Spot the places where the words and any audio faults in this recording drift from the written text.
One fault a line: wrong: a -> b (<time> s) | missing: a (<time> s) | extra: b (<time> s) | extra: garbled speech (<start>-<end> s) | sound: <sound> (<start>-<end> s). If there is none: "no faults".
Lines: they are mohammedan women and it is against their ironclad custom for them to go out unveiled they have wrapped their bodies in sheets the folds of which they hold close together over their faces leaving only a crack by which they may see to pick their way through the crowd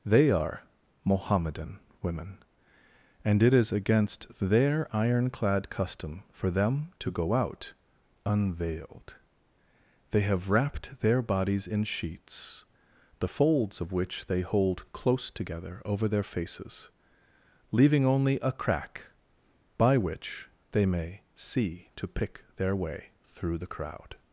no faults